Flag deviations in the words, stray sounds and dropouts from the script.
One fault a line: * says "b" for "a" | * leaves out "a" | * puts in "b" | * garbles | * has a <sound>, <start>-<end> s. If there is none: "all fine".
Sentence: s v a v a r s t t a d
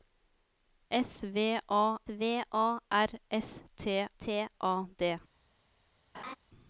* has a laugh, 6.1-6.4 s